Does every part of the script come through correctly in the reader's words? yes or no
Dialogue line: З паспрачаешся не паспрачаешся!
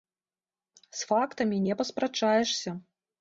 no